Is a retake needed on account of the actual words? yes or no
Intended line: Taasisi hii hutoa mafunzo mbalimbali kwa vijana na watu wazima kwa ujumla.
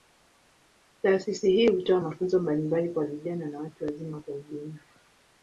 no